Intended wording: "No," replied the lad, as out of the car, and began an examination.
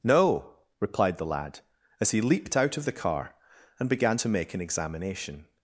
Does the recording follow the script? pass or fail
fail